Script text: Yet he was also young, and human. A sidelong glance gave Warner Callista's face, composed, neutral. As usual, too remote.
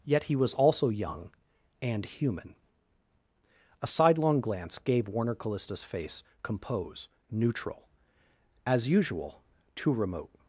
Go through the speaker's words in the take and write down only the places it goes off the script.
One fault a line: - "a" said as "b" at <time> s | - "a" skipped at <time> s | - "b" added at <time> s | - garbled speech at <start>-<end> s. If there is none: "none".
- "composed" said as "compose" at 6.4 s